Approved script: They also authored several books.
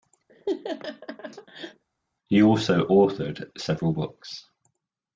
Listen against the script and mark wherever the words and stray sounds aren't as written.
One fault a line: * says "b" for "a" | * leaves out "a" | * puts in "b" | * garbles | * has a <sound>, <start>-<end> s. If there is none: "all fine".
* has a laugh, 0.3-1.8 s
* says "He" for "They"